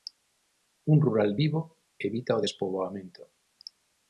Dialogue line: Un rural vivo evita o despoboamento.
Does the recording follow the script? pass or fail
pass